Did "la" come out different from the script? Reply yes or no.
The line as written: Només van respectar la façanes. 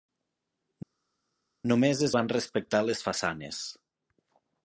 yes